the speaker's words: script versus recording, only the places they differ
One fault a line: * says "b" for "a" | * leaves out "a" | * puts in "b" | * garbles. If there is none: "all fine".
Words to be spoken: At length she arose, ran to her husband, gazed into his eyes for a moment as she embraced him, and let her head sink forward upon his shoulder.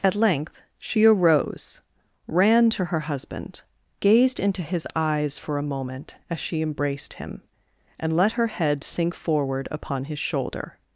all fine